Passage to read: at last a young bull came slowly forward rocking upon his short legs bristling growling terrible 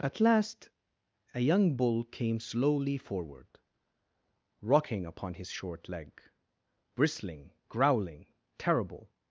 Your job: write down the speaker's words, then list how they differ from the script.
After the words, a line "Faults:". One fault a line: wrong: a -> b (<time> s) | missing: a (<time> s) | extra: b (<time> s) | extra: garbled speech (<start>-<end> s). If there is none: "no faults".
at last a young bull came slowly forward rocking upon his short leg bristling growling terrible
Faults:
wrong: legs -> leg (5.9 s)